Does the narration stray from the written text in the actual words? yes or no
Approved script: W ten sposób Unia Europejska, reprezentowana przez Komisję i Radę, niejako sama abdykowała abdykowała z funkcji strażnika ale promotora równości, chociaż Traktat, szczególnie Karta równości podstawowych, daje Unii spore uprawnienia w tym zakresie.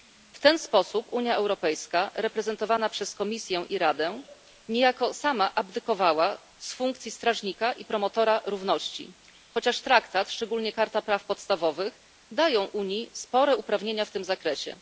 yes